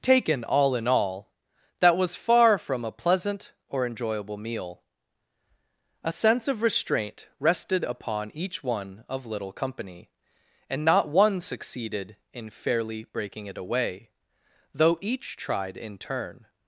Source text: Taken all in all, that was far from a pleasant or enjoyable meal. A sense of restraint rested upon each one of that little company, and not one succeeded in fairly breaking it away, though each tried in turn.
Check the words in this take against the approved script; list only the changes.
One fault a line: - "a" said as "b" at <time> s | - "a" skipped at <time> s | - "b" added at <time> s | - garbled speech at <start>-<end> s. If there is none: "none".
- "that" skipped at 9.2 s